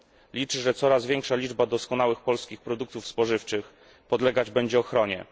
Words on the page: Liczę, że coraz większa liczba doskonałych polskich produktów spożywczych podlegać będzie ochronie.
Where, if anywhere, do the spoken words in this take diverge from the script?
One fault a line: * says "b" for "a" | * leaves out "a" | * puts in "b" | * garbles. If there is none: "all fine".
all fine